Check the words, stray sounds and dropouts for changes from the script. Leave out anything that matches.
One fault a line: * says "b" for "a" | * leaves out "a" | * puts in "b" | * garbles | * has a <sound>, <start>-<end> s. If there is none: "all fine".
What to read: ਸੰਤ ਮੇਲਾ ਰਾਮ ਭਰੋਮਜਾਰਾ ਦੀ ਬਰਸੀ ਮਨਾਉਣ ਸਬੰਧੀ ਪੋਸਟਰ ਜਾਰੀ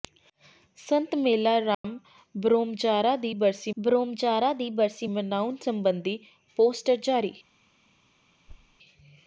* has a dropout, 1.7-1.8 s
* puts in "ਭਰੋਮਜਾਰਾ ਦੀ ਬਰਸੀ"
* has a thud, 8.5-8.8 s